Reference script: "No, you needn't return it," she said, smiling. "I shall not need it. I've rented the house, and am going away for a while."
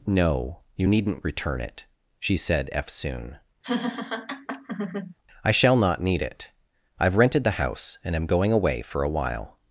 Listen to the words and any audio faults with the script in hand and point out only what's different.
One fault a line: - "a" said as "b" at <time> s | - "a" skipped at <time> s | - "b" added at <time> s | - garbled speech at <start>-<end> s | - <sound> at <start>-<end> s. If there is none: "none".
- "smiling" said as "eftsoon" at 2.7 s
- laugh at 3.6-5.1 s